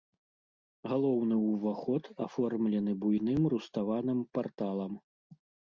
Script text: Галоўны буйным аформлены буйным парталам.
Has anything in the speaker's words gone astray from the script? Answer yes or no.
yes